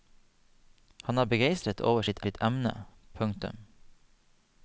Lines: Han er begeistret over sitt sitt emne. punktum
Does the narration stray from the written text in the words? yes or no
no